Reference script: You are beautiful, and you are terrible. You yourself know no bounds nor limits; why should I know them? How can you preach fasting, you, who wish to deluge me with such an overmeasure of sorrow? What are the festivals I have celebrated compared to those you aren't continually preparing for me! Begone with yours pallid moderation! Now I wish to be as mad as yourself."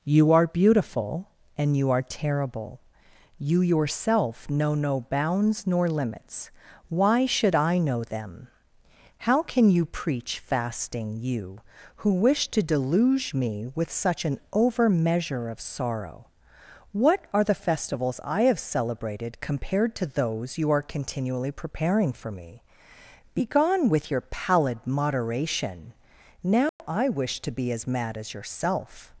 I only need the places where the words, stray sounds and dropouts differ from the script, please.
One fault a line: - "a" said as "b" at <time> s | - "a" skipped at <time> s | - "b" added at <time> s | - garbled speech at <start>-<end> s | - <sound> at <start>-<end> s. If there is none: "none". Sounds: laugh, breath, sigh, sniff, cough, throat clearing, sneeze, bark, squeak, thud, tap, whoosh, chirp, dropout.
- "aren't" said as "are" at 20.7 s
- "yours" said as "your" at 24.1 s
- dropout at 26.7-26.8 s